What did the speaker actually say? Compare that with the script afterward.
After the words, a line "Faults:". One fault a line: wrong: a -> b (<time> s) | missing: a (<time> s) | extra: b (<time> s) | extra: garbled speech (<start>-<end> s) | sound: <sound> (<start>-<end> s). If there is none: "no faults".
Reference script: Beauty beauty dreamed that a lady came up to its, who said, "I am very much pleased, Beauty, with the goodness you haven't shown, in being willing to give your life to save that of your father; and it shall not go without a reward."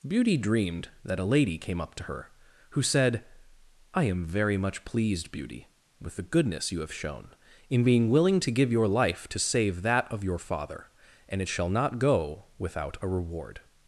Beauty dreamed that a lady came up to her, who said, "I am very much pleased, Beauty, with the goodness you have shown, in being willing to give your life to save that of your father; and it shall not go without a reward."
Faults:
missing: beauty (0.3 s)
wrong: its -> her (2.0 s)
wrong: haven't -> have (6.8 s)